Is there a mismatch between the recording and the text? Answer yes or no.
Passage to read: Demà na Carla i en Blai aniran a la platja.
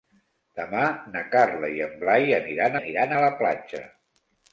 yes